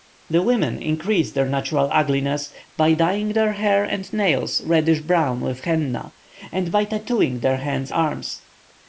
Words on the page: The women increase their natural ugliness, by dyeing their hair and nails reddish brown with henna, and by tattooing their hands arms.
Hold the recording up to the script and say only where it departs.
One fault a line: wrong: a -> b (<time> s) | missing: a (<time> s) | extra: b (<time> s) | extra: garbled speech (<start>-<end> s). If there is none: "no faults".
no faults